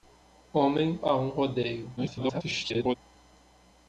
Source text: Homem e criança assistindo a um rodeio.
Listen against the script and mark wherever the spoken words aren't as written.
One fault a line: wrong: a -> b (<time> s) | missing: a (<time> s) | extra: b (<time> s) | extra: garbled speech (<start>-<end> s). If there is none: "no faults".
missing: e criança assistindo (1.0 s)
extra: garbled speech (2.0-3.0 s)